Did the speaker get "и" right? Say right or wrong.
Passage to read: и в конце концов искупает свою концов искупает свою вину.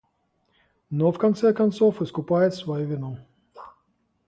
wrong